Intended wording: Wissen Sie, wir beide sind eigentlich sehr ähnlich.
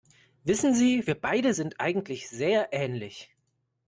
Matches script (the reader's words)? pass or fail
pass